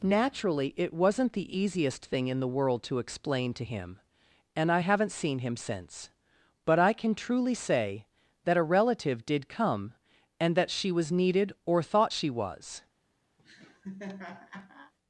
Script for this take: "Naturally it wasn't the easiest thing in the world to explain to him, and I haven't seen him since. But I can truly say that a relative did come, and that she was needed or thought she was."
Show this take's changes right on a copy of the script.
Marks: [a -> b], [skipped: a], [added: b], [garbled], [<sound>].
"Naturally it wasn't the easiest thing in the world to explain to him, and I haven't seen him since. But I can truly say that a relative did come, and that she was needed or thought she was." [laugh]